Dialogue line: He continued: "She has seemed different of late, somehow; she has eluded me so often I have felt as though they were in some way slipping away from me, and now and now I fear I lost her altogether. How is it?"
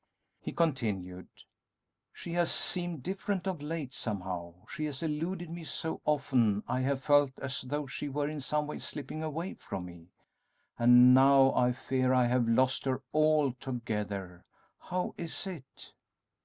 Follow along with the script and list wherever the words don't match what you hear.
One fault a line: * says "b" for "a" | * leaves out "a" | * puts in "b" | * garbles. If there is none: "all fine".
* says "she" for "they"
* leaves out "and now"
* puts in "have"